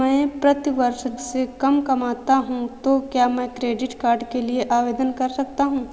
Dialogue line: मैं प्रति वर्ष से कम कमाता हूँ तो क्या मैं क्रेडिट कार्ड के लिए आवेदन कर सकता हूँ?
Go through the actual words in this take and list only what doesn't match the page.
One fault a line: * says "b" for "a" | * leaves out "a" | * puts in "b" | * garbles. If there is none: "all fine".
all fine